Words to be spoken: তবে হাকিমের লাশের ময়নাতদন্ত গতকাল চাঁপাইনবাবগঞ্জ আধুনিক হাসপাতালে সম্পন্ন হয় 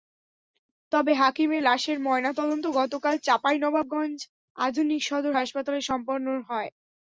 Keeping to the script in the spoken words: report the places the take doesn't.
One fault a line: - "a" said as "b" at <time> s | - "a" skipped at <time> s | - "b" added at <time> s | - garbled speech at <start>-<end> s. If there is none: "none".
- "সদর" added at 5.1 s